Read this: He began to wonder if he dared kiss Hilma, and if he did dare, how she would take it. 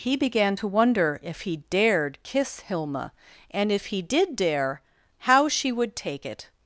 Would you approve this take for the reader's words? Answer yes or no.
yes